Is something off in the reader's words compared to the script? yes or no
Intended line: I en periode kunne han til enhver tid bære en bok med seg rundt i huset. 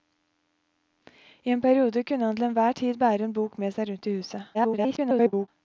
yes